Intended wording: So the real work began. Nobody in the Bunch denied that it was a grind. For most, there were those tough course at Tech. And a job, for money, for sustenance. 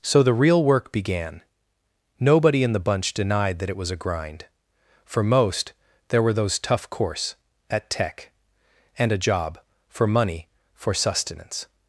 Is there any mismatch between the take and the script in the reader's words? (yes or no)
no